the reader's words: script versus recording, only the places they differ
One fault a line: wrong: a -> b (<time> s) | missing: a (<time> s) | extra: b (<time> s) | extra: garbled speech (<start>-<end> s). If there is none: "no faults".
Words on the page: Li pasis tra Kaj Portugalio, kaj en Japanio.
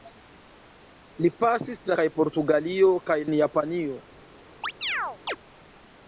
no faults